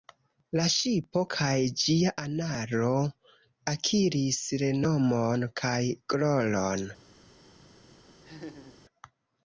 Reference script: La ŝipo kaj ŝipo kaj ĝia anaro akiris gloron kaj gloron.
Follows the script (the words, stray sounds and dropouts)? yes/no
no